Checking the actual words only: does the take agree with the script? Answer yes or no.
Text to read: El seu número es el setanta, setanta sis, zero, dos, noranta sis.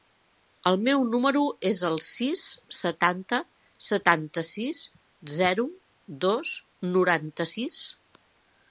no